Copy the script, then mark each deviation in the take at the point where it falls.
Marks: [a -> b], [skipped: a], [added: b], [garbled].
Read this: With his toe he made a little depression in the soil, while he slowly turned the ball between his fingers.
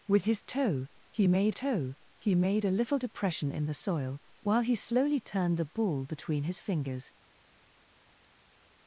With his toe he made [added: toe he made] a little depression in the soil, while he slowly turned the ball between his fingers.